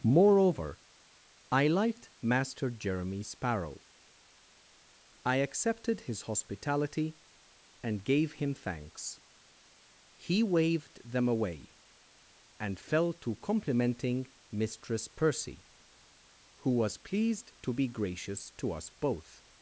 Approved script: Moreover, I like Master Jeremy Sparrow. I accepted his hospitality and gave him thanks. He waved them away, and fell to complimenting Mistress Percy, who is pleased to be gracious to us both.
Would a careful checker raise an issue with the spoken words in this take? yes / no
yes